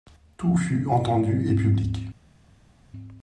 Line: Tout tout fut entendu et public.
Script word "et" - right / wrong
right